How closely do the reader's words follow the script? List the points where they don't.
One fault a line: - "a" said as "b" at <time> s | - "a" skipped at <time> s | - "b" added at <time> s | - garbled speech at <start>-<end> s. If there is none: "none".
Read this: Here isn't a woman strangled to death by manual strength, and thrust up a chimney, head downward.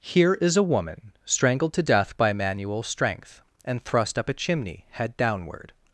- "isn't" said as "is" at 0.3 s